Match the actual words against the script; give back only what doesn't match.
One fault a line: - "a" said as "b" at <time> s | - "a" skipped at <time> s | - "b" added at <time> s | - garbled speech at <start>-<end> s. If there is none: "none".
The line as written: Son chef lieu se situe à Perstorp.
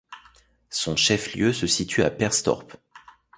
none